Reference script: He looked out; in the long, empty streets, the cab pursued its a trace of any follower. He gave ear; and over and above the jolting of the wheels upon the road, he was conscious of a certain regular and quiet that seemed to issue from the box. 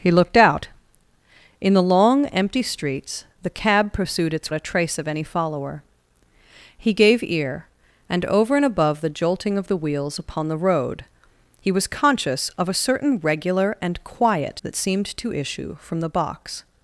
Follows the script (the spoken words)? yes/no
yes